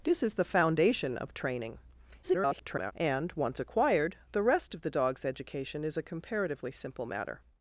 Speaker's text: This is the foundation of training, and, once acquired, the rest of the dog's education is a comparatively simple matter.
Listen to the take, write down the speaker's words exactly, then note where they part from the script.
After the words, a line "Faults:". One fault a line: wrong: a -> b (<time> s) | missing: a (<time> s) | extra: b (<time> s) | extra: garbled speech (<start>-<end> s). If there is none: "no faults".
This is the foundation of training, [garbled] and, once acquired, the rest of the dog's education is a comparatively simple matter.
Faults:
extra: garbled speech (2.2-2.9 s)